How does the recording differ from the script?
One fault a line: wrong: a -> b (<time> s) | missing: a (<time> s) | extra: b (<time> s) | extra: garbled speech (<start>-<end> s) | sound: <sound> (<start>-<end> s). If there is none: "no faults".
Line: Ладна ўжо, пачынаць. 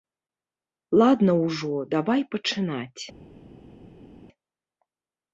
extra: давай (2.0 s)